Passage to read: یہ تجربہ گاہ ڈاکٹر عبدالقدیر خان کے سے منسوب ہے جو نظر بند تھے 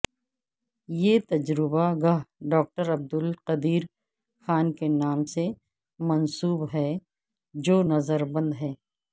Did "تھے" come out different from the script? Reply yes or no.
yes